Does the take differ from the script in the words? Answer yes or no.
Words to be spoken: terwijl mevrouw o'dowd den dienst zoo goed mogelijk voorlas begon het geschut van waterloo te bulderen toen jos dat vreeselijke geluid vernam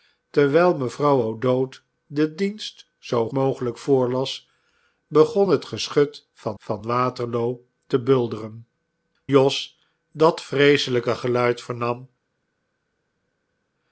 yes